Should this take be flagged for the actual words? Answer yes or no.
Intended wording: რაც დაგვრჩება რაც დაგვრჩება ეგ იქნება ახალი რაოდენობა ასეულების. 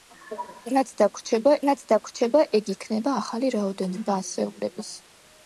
no